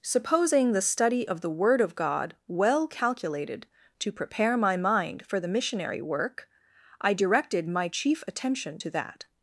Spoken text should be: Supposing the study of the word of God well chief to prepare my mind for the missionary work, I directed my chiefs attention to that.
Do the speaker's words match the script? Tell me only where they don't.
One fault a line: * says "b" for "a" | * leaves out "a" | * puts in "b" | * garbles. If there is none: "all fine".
* says "calculated" for "chief"
* says "chief" for "chiefs"